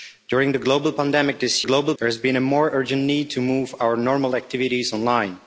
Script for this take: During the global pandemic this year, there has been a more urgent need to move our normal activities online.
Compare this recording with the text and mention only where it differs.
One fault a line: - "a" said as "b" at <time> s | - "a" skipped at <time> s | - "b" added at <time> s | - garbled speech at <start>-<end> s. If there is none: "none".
- "year" said as "global" at 1.6 s